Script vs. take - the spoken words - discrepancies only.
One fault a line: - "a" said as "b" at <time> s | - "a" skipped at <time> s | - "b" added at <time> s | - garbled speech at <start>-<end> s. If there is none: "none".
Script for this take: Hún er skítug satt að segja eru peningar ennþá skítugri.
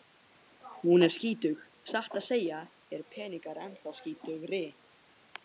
none